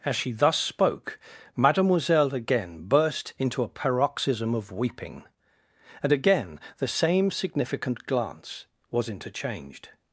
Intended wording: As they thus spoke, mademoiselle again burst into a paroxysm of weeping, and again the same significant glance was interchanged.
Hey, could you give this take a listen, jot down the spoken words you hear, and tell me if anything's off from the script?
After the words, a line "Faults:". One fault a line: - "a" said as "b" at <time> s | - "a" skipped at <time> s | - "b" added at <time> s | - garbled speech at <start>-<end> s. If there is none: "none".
As she thus spoke, mademoiselle again burst into a paroxysm of weeping, and again the same significant glance was interchanged.
Faults:
- "they" said as "she" at 0.1 s